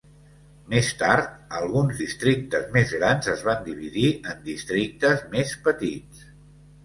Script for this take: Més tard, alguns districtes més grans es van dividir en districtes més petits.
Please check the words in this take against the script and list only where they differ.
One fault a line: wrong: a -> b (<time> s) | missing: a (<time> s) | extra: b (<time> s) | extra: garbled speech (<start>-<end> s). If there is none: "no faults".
no faults